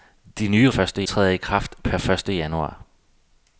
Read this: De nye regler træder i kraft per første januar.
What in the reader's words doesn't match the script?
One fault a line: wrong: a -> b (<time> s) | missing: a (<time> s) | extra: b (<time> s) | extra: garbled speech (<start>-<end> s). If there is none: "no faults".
wrong: regler -> første (0.7 s)